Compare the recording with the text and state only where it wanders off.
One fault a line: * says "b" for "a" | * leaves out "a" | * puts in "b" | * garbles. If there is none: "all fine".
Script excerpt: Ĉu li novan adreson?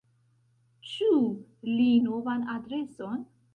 all fine